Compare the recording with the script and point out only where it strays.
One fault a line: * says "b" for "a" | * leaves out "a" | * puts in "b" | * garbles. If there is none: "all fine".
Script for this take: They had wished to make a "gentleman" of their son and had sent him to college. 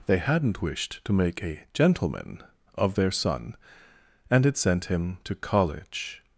* says "hadn't" for "had"